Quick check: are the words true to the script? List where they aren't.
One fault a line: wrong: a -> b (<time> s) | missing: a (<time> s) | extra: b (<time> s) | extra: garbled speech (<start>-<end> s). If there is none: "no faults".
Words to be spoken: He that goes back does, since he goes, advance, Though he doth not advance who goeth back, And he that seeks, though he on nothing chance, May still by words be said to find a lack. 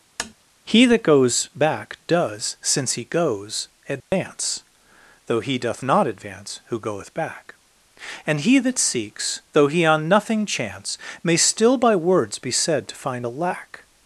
no faults